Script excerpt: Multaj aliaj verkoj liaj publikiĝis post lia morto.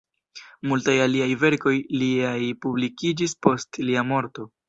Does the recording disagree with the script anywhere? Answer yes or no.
no